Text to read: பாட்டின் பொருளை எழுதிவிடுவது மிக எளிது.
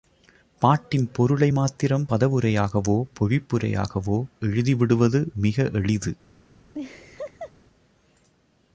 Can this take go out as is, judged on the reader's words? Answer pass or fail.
fail